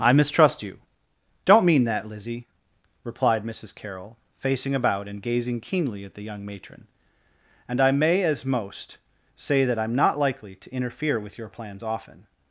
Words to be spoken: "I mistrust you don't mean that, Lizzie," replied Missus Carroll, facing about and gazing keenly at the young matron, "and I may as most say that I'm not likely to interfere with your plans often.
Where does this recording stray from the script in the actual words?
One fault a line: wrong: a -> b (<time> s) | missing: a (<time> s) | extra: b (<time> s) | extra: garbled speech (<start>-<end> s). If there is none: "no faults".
no faults